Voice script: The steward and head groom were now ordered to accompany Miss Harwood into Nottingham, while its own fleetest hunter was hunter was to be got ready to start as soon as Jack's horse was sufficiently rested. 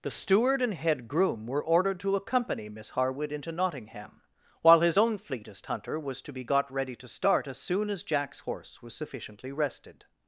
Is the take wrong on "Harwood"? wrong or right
right